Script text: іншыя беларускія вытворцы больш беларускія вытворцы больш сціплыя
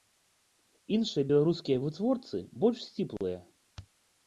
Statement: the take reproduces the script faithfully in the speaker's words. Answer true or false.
false